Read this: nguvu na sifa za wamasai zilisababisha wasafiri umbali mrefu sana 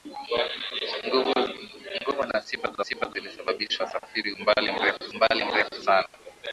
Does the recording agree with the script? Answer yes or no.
no